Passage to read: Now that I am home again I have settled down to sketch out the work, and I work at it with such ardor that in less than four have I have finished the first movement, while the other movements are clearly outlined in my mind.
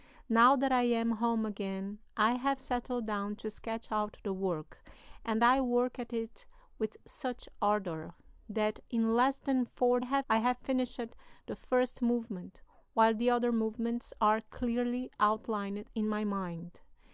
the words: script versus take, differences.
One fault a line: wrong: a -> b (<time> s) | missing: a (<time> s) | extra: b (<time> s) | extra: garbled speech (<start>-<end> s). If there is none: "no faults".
no faults